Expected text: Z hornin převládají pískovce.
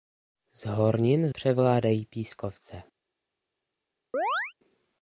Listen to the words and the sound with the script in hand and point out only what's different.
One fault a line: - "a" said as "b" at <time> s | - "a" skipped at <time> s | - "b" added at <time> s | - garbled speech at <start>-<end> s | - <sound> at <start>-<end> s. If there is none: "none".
- chirp at 4.1-4.5 s